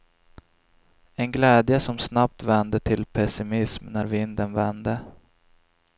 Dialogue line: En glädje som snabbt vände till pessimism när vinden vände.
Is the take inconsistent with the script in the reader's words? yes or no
no